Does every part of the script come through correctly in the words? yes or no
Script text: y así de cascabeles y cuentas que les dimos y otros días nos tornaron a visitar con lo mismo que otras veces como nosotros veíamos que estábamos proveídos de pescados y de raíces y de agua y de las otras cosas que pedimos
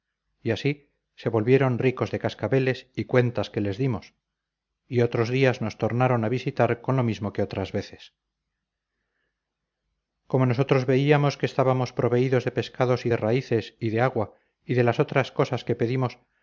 no